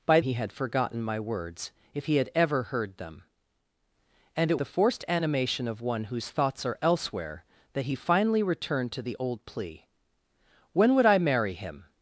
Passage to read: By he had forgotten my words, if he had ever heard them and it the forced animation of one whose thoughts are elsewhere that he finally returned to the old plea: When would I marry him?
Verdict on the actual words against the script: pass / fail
pass